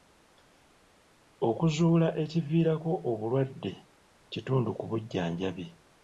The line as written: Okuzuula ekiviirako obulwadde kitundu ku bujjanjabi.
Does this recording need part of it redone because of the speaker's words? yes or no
no